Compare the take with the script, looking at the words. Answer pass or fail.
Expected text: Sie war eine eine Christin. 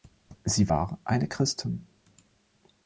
fail